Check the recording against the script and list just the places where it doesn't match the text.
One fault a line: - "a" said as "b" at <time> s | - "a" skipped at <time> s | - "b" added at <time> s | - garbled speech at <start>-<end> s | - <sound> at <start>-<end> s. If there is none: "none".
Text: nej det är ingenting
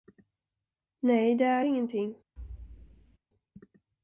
- thud at 2.4-3.2 s